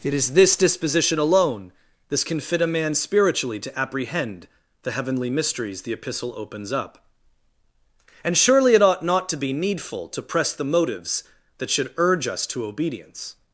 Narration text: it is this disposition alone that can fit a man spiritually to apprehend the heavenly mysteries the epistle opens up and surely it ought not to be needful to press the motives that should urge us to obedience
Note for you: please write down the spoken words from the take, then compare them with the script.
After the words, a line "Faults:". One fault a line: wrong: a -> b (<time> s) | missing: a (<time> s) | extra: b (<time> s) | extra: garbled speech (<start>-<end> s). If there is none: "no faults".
it is this disposition alone this can fit a man spiritually to apprehend the heavenly mysteries the epistle opens up and surely it ought not to be needful to press the motives that should urge us to obedience
Faults:
wrong: that -> this (2.1 s)